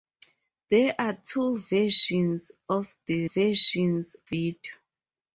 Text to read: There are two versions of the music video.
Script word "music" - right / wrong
wrong